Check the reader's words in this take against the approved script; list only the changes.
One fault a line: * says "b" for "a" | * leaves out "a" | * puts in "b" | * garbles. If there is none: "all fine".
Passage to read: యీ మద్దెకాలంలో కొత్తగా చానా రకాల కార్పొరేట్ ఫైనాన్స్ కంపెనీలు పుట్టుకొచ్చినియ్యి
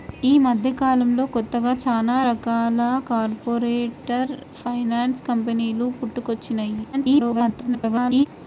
* garbles